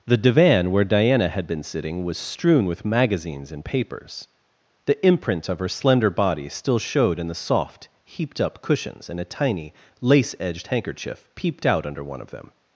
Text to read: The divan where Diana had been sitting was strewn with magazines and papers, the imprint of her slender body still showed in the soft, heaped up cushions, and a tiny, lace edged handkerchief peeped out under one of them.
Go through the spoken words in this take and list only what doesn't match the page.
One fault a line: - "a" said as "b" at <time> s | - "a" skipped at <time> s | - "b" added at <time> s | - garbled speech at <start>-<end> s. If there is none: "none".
none